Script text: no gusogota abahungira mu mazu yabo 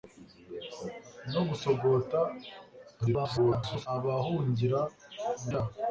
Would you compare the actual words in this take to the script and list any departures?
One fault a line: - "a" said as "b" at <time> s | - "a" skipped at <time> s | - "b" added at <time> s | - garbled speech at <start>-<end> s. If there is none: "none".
- garbled speech at 3.0-3.9 s
- "mazu" skipped at 5.5 s